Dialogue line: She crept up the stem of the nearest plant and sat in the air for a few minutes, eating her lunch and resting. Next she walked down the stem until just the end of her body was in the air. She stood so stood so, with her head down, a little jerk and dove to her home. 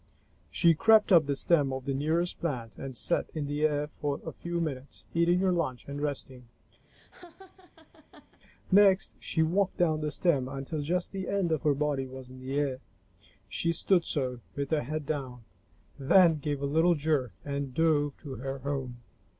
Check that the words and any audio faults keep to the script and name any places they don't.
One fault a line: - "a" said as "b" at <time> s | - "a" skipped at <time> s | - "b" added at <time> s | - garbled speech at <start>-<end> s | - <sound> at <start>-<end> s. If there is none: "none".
- laugh at 6.8-8.4 s
- "stood so" skipped at 14.4 s
- "then gave" added at 16.0 s